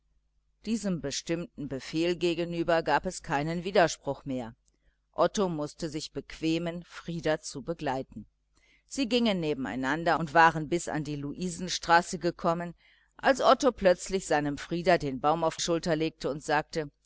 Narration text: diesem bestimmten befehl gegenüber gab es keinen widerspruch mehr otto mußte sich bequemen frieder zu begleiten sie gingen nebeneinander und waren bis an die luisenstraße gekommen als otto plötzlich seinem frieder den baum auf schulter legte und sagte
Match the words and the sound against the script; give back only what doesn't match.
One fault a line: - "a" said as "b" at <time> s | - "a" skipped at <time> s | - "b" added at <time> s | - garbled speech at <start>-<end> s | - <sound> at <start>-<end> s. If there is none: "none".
none